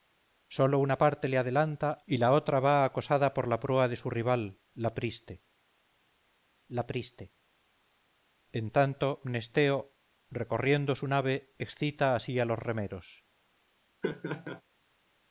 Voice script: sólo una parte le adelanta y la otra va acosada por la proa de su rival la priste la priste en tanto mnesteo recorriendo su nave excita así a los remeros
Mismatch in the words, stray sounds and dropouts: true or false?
true